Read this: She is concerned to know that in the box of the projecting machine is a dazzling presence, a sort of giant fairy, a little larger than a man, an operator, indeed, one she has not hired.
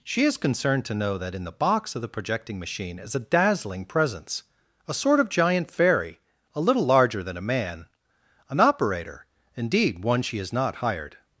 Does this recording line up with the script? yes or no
yes